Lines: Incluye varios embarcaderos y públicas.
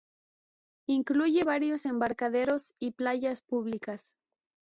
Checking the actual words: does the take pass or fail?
fail